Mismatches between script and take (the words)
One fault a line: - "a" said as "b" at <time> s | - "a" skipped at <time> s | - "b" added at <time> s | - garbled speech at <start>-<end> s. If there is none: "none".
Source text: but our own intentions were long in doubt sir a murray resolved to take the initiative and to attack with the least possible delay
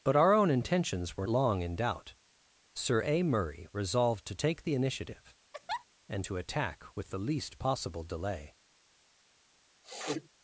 none